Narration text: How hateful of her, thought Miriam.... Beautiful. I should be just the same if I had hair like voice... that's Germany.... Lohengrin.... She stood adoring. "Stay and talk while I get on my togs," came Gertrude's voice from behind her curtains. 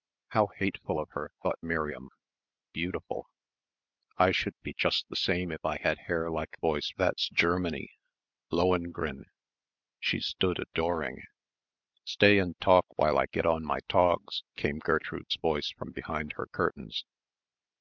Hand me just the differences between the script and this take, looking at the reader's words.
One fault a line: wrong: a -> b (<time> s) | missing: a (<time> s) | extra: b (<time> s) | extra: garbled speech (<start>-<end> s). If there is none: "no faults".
no faults